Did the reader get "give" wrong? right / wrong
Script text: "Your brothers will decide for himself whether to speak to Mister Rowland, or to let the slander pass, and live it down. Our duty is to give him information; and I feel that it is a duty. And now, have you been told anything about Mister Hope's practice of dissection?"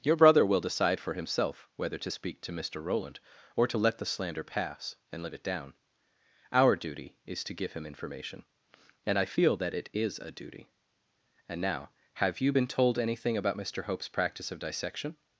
right